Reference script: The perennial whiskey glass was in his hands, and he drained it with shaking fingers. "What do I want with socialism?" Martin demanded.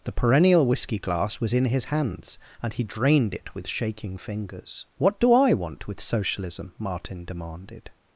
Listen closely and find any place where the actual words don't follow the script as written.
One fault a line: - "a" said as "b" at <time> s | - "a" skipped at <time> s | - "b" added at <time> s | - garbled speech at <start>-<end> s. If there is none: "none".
none